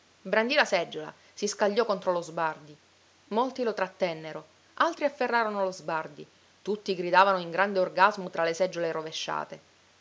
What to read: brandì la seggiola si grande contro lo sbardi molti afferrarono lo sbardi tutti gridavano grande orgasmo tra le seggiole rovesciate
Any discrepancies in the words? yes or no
yes